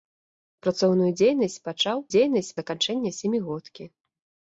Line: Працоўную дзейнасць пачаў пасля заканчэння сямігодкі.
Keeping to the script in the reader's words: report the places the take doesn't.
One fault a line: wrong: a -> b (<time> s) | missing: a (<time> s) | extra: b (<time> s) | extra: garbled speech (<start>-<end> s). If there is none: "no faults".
wrong: пасля -> дзейнасць (2.1 s)